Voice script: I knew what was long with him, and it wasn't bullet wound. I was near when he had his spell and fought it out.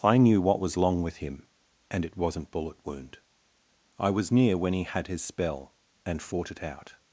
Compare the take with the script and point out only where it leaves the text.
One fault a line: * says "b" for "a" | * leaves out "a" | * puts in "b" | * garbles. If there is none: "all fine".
all fine